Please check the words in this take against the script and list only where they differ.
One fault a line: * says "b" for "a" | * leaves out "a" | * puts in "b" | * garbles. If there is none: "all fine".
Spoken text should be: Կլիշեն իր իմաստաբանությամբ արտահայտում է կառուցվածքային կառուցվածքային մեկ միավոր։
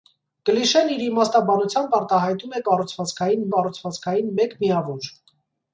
all fine